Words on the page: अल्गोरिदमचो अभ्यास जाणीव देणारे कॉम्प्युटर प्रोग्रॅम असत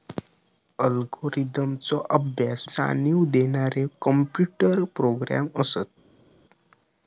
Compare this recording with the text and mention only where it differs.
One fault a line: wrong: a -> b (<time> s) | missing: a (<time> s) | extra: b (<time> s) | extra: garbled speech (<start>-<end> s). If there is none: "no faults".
no faults